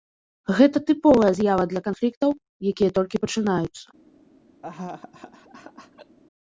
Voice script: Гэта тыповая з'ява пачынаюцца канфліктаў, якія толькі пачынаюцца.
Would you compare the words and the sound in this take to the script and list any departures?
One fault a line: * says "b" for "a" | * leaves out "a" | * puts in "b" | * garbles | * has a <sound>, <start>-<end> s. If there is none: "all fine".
* says "для" for "пачынаюцца"
* has a laugh, 4.6-6.2 s